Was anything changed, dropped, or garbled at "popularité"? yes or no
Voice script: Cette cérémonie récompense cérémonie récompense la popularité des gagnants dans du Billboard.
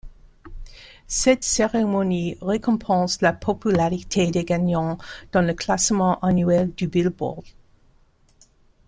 no